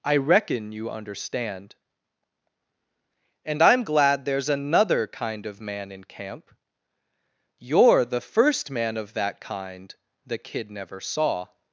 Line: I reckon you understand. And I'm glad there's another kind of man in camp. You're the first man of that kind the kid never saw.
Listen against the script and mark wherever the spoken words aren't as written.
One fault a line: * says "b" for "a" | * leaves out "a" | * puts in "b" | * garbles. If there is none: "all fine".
all fine